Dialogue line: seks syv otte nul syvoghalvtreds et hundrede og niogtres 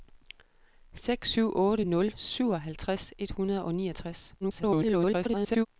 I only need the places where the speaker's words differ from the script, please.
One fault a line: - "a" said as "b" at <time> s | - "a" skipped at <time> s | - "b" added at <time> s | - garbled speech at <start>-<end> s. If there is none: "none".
- garbled speech at 4.4-5.7 s